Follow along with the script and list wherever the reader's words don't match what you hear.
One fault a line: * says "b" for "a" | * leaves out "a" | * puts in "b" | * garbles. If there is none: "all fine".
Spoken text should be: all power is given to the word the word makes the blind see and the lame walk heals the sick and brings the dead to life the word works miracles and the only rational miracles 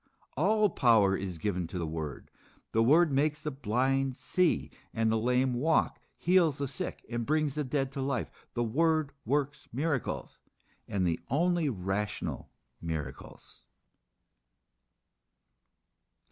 all fine